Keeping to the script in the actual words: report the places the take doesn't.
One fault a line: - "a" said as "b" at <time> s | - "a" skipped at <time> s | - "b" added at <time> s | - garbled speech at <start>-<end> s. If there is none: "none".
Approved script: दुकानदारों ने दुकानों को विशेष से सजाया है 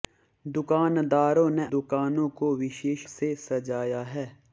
none